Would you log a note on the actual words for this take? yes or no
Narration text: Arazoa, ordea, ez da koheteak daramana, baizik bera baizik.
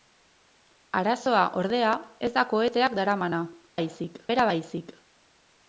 no